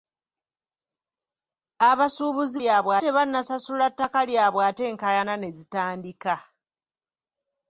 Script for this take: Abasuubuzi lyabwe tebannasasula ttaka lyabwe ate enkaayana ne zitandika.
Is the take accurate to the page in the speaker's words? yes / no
yes